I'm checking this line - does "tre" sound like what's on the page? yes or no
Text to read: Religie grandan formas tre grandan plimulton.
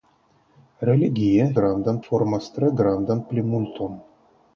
yes